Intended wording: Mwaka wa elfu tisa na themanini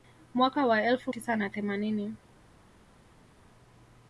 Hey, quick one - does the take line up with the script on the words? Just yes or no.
yes